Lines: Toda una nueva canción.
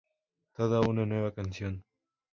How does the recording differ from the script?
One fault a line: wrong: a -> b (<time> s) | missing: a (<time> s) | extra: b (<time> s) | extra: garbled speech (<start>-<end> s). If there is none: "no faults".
no faults